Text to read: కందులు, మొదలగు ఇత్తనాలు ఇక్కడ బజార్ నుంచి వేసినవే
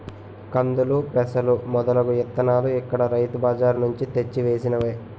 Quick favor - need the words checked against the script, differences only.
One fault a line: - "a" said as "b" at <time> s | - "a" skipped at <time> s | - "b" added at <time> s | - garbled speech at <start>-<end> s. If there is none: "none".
- "పెసలు" added at 1.1 s
- "రైతు" added at 3.1 s
- "తెచ్చి" added at 4.2 s